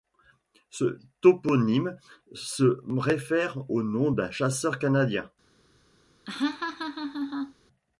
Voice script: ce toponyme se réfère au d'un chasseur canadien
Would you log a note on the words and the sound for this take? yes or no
yes